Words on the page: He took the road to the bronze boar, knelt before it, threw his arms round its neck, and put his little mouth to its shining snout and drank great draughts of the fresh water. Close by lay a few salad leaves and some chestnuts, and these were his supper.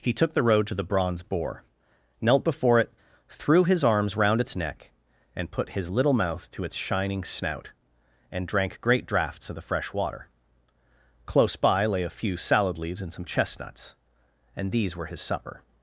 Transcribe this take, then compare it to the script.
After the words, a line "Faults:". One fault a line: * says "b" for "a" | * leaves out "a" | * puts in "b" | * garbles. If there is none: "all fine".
He took the road to the bronze boar, knelt before it, threw his arms round its neck, and put his little mouth to its shining snout and drank great draughts of the fresh water. Close by lay a few salad leaves and some chestnuts, and these were his supper.
Faults:
all fine